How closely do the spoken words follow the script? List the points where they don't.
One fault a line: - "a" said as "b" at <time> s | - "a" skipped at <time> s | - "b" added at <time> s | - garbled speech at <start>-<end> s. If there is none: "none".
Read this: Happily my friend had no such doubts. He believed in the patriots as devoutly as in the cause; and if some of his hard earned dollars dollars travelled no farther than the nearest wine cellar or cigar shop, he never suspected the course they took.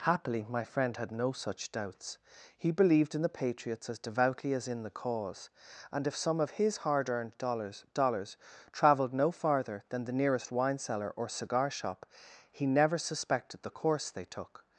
none